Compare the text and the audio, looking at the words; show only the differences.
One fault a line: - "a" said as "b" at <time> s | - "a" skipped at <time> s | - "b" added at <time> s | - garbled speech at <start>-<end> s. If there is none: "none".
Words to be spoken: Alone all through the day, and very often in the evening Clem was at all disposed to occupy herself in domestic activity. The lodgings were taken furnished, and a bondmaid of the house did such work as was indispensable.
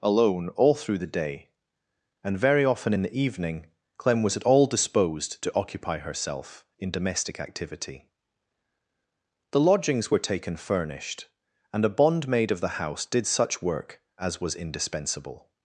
none